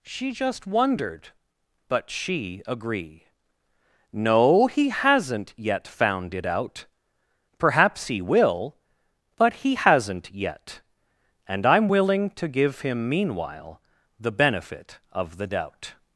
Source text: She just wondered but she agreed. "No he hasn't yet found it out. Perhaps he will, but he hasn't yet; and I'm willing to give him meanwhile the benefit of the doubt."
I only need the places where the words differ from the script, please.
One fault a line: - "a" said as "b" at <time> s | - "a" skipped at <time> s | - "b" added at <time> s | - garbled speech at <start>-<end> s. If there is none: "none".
- "agreed" said as "agree" at 2.7 s